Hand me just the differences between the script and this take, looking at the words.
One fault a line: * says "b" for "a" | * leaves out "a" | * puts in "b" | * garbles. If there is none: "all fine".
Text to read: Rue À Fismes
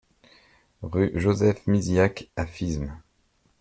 * puts in "Joseph Misiack"